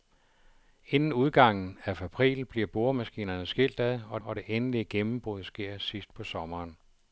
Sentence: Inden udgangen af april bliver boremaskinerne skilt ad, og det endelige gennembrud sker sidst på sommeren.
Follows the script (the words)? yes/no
no